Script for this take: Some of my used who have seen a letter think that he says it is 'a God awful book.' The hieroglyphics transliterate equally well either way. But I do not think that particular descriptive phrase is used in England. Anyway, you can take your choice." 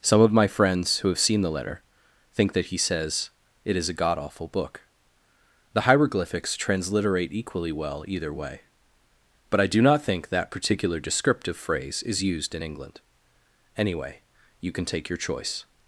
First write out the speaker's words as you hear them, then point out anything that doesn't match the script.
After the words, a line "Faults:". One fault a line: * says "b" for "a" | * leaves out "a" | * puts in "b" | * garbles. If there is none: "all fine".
Some of my friends who have seen the letter think that he says it is 'a God awful book.' The hieroglyphics transliterate equally well either way. But I do not think that particular descriptive phrase is used in England. Anyway, you can take your choice."
Faults:
* says "friends" for "used"
* says "the" for "a"